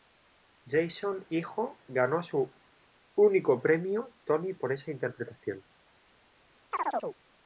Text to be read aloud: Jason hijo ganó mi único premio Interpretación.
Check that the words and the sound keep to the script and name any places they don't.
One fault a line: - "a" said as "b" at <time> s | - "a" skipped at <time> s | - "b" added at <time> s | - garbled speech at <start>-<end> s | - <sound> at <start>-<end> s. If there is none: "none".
- "mi" said as "su" at 2.2 s
- "Tony por esa" added at 4.2 s
- chirp at 6.7-7.2 s